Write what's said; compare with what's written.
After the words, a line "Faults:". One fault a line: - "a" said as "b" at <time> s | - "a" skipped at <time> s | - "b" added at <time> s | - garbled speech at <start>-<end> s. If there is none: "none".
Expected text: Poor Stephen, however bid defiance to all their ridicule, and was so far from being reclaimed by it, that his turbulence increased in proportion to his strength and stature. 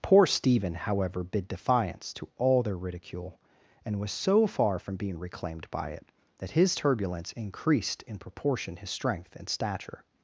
Poor Stephen, however bid defiance to all their ridicule, and was so far from being reclaimed by it, that his turbulence increased in proportion his strength and stature.
Faults:
- "to" skipped at 8.8 s